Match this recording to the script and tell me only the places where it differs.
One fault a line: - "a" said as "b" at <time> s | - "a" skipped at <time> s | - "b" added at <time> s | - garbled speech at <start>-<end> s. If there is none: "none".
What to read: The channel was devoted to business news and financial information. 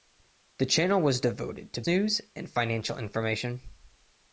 - "business" skipped at 1.8 s